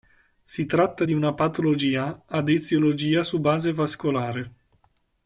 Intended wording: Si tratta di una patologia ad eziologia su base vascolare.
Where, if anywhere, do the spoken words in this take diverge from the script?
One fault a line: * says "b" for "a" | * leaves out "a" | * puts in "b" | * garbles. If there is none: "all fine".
all fine